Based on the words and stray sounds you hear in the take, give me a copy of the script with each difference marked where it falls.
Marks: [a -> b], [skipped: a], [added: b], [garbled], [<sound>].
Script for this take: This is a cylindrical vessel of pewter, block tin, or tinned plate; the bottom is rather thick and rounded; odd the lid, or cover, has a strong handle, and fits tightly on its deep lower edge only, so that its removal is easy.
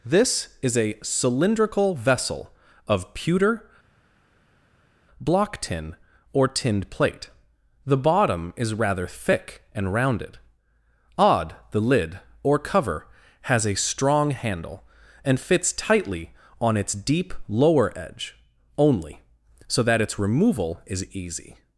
This is a cylindrical vessel of pewter, block tin, or tinned plate; the bottom is rather thick and rounded; odd the lid, or cover, has a strong handle, and fits tightly on its deep lower edge only, so that its removal is easy.